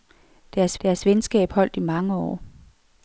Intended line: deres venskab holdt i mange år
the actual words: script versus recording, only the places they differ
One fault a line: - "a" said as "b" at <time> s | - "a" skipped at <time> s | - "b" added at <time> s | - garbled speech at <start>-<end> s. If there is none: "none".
- "deres" added at 0.8 s